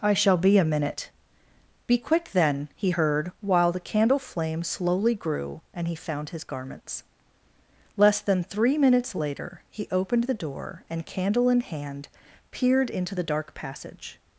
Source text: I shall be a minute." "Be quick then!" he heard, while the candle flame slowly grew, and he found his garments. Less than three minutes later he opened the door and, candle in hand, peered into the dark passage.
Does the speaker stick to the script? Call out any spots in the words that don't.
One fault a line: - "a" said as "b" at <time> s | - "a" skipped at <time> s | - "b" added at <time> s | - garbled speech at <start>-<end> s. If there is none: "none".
none